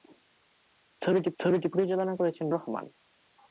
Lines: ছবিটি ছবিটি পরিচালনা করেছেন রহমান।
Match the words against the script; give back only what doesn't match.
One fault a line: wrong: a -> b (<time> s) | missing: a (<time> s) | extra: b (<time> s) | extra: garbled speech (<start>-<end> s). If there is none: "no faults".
no faults